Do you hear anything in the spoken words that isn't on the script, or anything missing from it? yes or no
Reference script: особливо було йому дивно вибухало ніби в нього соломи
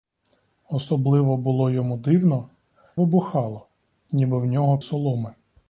no